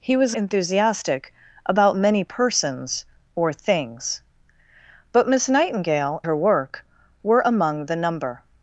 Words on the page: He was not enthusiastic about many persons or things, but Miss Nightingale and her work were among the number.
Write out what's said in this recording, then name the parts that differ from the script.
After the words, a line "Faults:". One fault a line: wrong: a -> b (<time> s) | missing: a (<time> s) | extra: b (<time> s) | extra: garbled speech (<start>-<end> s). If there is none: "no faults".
He was enthusiastic about many persons or things, but Miss Nightingale her work were among the number.
Faults:
missing: not (0.3 s)
missing: and (6.2 s)